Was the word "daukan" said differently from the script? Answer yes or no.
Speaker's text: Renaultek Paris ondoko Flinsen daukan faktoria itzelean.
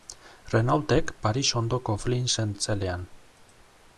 yes